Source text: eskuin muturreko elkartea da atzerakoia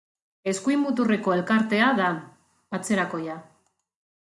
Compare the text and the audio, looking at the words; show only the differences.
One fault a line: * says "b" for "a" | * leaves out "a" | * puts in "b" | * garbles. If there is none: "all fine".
all fine